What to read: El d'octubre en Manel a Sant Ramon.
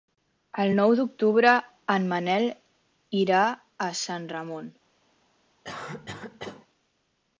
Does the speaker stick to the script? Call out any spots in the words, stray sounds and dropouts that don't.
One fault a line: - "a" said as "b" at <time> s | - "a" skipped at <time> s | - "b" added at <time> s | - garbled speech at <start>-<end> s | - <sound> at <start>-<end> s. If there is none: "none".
- "nou" added at 0.8 s
- "irà" added at 3.3 s
- cough at 5.6-6.7 s